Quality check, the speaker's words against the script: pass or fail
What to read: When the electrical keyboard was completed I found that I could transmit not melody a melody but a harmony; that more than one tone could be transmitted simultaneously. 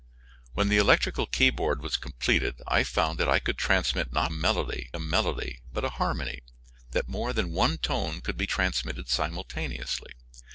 pass